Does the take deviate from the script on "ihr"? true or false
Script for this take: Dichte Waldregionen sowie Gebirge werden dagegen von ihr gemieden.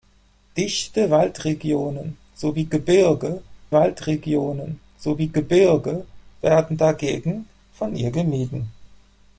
false